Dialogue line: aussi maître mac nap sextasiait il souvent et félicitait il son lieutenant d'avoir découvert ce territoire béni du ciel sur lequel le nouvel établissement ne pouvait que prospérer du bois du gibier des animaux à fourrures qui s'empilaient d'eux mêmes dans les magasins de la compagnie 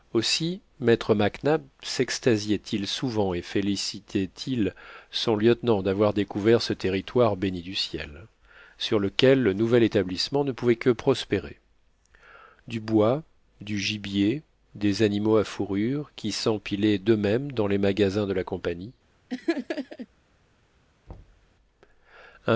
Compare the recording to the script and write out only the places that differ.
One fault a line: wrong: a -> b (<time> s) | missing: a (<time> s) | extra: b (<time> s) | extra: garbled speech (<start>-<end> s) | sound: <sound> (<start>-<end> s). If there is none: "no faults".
sound: laugh (19.3-20.1 s)
sound: thud (21.1-21.5 s)